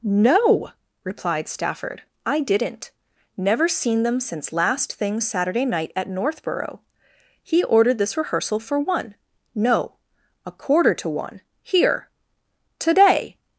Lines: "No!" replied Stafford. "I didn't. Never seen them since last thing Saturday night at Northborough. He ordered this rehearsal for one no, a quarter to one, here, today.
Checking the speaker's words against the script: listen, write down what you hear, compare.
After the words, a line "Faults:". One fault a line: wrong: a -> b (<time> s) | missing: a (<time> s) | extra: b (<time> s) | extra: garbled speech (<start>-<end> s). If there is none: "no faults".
"No!" replied Stafford. "I didn't. Never seen them since last thing Saturday night at Northborough. He ordered this rehearsal for one no, a quarter to one, here, today.
Faults:
no faults